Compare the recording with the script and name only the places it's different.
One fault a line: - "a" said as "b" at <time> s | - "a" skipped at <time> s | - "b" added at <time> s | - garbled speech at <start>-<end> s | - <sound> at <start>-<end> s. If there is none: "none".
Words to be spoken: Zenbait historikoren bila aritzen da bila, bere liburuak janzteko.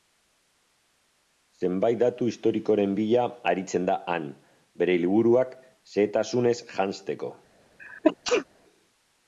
- "datu" added at 2.0 s
- "bila" said as "han" at 4.1 s
- "xehetasunez" added at 5.9 s
- sneeze at 7.8-8.5 s